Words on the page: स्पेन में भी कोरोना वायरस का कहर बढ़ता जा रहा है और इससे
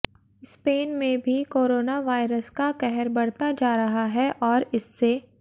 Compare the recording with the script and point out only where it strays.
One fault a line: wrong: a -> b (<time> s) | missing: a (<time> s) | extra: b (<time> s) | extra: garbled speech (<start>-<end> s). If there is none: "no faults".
no faults